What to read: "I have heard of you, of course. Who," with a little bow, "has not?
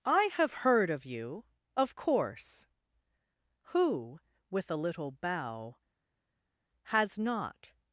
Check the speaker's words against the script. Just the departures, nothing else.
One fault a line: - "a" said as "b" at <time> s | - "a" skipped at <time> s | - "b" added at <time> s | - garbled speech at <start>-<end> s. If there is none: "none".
none